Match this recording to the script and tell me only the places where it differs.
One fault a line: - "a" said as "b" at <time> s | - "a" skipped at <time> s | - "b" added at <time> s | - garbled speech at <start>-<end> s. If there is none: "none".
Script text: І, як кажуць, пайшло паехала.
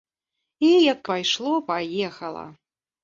- "кажуць" skipped at 1.0 s